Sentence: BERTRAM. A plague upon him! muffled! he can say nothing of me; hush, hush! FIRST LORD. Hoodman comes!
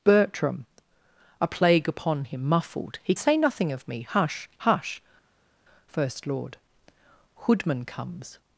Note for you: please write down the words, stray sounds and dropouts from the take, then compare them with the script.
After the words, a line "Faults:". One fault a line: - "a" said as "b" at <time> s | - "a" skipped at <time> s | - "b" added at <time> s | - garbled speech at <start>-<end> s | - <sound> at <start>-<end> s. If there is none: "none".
BERTRAM. A plague upon him! muffled! he say nothing of me; hush, hush! FIRST LORD. Hoodman comes!
Faults:
- "can" skipped at 3.1 s